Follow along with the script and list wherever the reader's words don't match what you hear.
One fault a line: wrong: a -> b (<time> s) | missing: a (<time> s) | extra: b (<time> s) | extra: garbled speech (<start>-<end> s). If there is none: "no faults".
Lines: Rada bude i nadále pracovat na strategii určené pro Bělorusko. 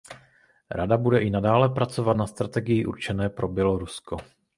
no faults